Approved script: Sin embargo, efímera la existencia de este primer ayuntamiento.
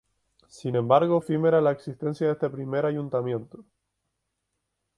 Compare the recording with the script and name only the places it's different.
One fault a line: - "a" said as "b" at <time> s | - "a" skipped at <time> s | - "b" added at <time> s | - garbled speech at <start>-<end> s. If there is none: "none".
none